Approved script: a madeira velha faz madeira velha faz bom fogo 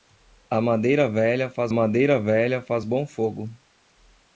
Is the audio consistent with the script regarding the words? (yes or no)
yes